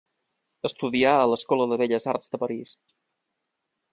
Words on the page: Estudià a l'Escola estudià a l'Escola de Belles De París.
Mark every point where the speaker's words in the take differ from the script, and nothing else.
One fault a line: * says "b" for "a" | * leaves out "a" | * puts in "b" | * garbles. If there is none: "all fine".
* leaves out "estudià a l'Escola"
* puts in "Arts"